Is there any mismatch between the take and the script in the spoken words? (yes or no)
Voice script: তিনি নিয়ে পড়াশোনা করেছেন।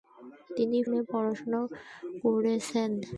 no